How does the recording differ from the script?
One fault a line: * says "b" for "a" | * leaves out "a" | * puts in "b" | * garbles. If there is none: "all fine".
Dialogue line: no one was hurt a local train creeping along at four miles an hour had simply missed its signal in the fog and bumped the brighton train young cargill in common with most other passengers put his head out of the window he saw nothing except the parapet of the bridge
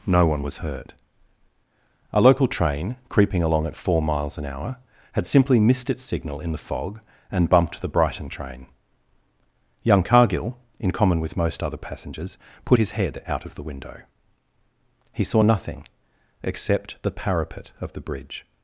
all fine